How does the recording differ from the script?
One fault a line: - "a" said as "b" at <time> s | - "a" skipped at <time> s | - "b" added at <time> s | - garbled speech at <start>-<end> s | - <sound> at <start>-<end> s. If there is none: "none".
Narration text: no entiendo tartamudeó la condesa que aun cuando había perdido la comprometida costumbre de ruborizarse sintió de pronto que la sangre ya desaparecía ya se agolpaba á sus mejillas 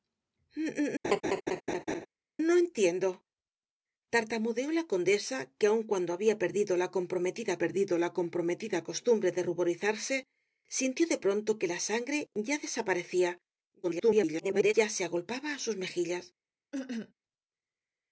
- laugh at 1.0-2.1 s
- "perdido la comprometida" added at 7.6 s
- garbled speech at 13.8-14.7 s
- cough at 16.7-17.1 s